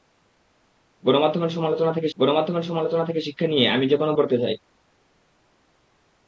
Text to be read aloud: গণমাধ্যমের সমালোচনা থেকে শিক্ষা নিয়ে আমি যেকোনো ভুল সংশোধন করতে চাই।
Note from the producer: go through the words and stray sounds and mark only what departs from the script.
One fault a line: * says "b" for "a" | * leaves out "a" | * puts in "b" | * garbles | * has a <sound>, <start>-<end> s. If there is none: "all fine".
* puts in "গণমাধ্যমের সমালোচনা থেকে"
* leaves out "ভুল সংশোধন"